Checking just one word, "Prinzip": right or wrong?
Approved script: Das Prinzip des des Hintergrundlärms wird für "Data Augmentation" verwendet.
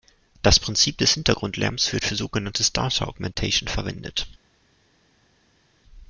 right